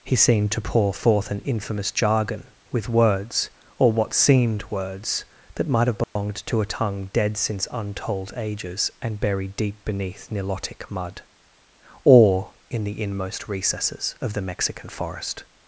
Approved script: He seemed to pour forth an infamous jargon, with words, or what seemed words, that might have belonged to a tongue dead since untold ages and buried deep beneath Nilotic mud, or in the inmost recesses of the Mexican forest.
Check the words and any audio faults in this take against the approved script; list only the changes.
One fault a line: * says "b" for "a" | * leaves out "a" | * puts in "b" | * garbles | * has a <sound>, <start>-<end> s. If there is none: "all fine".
* has a dropout, 6.0-6.2 s